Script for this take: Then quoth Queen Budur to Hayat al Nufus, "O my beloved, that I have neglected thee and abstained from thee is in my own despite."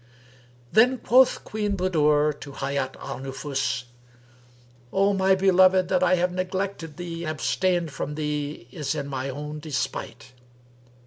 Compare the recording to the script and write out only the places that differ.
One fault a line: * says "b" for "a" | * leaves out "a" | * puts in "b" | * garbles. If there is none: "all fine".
* leaves out "and"